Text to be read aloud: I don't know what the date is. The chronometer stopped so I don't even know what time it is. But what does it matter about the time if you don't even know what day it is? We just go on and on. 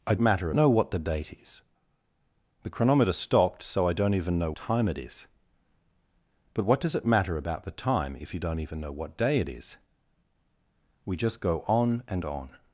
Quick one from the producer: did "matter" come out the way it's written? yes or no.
yes